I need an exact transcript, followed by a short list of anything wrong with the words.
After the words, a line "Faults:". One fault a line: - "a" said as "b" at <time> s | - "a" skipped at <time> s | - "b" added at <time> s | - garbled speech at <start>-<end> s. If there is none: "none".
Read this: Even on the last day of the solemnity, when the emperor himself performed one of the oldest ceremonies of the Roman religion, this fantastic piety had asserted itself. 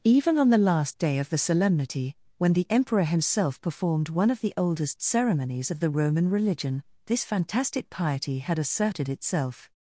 Even on the last day of the solemnity, when the emperor himself performed one of the oldest ceremonies of the Roman religion, this fantastic piety had asserted itself.
Faults:
none